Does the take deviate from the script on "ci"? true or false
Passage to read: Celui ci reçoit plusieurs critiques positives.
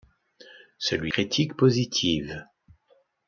true